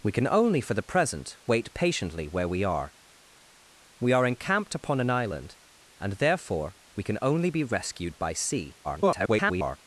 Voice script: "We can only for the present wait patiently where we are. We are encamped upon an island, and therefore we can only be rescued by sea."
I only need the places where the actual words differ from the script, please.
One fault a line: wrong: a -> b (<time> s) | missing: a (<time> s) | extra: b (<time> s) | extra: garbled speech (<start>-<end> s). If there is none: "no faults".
extra: garbled speech (8.8-9.8 s)